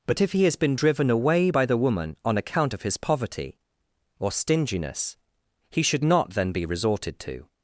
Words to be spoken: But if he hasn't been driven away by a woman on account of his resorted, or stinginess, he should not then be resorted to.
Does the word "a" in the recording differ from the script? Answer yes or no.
yes